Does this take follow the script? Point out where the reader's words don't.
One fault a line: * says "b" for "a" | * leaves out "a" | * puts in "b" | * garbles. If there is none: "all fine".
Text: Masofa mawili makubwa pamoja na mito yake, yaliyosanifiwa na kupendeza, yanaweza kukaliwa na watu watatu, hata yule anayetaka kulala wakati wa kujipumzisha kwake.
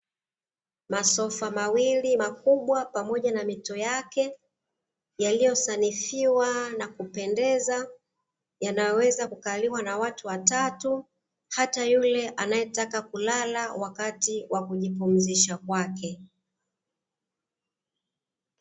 all fine